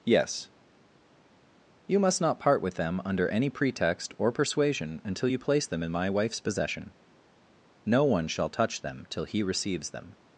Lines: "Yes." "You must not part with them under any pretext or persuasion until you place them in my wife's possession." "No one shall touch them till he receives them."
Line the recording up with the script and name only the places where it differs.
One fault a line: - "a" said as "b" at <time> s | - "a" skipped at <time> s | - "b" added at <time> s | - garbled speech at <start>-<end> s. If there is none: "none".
none